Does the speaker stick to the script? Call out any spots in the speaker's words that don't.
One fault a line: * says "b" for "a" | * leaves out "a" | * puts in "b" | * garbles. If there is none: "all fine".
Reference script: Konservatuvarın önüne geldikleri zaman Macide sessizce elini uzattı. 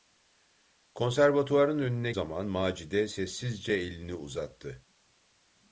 * leaves out "geldikleri"